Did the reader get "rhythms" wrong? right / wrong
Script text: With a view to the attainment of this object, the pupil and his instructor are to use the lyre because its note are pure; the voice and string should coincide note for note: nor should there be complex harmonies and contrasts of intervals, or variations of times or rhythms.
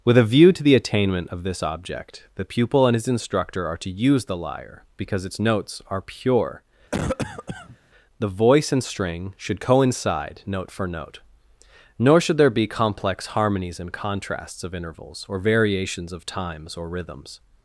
right